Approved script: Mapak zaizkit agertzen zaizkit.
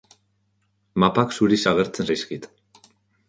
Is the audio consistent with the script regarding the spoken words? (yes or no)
no